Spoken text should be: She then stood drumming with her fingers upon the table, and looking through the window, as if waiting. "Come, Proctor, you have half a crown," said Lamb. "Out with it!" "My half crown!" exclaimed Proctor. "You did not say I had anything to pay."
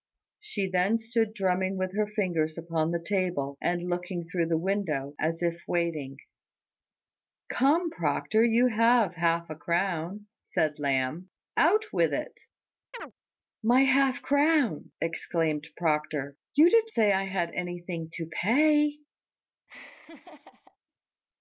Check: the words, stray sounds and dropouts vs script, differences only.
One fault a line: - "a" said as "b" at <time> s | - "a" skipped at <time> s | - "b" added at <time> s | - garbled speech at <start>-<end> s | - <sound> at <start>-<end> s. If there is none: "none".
- chirp at 12.9-13.1 s
- "not" skipped at 16.9 s
- laugh at 19.7-20.8 s